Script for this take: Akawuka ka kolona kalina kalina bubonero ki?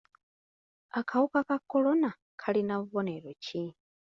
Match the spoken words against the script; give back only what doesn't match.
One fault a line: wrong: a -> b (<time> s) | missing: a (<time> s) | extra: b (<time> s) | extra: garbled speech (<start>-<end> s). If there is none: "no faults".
missing: kalina (2.7 s)